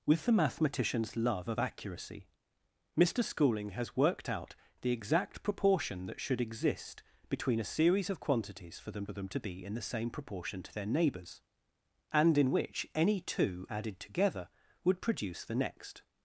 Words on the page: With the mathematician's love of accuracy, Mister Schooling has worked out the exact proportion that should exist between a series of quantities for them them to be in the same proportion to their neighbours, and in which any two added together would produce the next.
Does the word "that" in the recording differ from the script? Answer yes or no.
no